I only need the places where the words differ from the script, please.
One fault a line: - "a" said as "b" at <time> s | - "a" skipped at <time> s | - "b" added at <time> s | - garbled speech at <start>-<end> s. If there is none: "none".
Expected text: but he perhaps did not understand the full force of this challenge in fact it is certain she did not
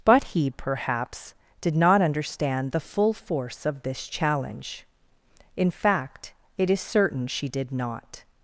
none